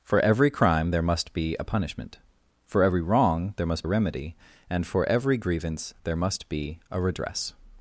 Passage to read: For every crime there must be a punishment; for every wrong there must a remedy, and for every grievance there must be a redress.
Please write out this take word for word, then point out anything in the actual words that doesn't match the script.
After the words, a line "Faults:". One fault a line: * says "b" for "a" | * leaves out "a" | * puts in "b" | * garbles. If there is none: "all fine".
For every crime there must be a punishment; for every wrong there must a remedy, and for every grievance there must be a redress.
Faults:
all fine